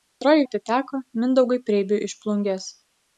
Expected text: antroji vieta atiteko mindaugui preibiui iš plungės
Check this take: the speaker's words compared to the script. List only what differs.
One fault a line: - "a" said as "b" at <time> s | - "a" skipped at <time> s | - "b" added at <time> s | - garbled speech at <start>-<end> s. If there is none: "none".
- "vieta" skipped at 0.5 s